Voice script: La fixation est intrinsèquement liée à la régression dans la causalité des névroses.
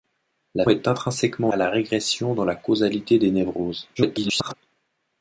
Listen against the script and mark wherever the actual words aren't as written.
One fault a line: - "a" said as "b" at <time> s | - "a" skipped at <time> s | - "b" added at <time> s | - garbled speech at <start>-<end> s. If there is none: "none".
- "fixation" skipped at 0.7 s
- "liée" skipped at 1.5 s
- garbled speech at 4.0-4.5 s